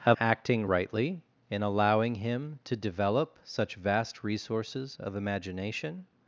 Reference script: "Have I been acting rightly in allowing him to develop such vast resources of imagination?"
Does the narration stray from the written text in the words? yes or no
yes